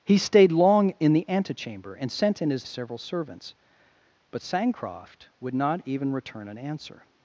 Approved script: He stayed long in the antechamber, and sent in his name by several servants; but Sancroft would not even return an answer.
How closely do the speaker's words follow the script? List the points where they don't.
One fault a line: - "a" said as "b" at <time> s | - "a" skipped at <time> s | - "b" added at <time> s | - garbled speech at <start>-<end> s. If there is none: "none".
- "name by" skipped at 2.6 s